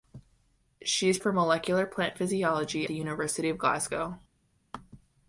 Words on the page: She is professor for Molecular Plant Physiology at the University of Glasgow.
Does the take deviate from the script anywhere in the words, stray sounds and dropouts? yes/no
yes